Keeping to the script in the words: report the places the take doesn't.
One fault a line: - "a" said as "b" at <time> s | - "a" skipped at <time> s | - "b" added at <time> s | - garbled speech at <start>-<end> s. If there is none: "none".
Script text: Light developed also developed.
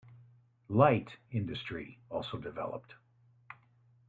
- "developed" said as "industry" at 1.3 s